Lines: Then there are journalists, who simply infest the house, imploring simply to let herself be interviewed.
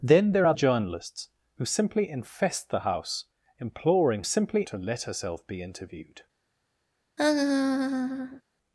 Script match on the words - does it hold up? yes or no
yes